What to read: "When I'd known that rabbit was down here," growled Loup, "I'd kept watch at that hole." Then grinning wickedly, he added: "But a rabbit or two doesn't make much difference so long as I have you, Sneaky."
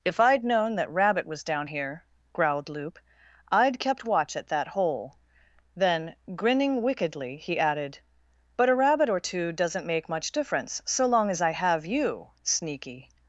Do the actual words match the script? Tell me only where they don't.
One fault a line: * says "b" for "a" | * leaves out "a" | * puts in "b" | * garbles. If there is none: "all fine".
* says "If" for "When"